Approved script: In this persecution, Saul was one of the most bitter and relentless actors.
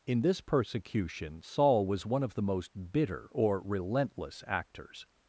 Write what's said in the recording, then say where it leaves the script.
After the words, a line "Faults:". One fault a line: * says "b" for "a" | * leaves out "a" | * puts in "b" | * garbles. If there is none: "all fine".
In this persecution, Saul was one of the most bitter or relentless actors.
Faults:
* says "or" for "and"